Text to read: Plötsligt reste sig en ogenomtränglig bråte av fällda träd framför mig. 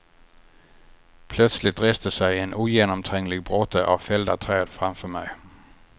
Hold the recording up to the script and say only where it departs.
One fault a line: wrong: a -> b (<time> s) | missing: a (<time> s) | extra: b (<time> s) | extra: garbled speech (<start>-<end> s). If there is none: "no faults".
no faults